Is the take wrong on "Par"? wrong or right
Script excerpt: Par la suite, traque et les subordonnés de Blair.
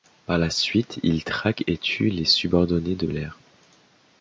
right